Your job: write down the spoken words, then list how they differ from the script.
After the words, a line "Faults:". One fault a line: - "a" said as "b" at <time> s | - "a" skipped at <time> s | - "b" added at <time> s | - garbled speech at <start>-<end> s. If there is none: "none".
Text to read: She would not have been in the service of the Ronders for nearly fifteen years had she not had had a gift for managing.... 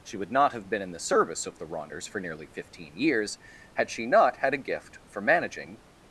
She would not have been in the service of the Ronders for nearly fifteen years had she not had a gift for managing....
Faults:
- "had" skipped at 4.5 s